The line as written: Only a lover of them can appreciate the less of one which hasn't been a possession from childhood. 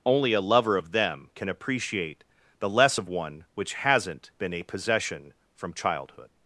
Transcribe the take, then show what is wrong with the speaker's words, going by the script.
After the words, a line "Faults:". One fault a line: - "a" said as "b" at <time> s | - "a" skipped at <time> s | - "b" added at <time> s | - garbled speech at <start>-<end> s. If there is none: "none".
Only a lover of them can appreciate the less of one which hasn't been a possession from childhood.
Faults:
none